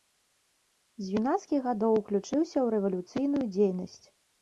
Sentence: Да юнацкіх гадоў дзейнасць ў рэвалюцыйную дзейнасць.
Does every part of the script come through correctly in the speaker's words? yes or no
no